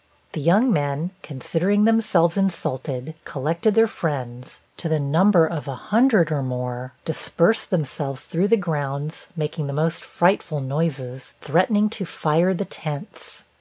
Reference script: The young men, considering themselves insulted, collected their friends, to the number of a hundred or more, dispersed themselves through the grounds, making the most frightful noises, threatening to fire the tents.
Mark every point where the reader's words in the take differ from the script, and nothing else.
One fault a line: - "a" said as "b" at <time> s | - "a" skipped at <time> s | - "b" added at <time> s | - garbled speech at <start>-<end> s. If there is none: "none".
none